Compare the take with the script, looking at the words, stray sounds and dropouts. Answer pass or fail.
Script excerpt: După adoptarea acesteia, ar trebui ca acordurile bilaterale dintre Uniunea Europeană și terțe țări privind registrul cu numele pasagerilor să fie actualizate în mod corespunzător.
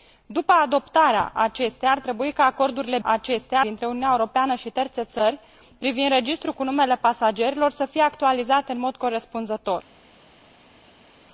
fail